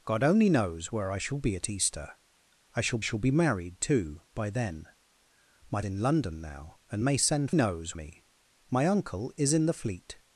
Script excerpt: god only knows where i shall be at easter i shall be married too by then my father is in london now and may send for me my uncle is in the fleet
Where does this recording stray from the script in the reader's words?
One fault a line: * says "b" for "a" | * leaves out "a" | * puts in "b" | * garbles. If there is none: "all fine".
* puts in "shall"
* leaves out "father is"
* says "knows" for "for"